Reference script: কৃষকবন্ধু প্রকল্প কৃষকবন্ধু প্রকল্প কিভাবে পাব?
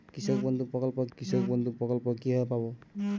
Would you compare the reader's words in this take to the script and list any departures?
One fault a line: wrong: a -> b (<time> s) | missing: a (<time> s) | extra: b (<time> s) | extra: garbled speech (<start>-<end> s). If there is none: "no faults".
no faults